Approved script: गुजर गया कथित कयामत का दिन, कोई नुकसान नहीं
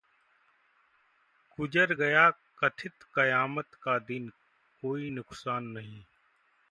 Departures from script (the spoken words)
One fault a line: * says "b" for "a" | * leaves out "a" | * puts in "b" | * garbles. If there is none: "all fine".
all fine